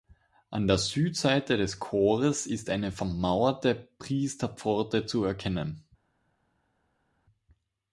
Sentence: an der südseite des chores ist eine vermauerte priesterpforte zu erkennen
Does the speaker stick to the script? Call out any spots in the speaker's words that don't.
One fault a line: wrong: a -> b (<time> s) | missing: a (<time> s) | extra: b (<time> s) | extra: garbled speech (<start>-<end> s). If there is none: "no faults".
no faults